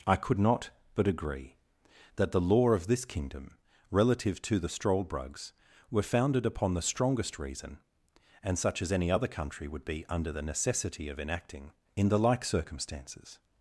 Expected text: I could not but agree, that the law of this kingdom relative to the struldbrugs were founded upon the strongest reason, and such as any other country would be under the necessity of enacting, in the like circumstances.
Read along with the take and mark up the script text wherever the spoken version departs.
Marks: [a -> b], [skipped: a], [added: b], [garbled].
I could not but agree, that the law of this kingdom relative to the struldbrugs were founded upon the strongest reason, and such as any other country would be under the necessity of enacting, in the like circumstances.